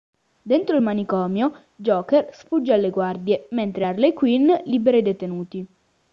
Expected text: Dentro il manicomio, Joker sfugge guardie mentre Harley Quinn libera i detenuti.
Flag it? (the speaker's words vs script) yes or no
yes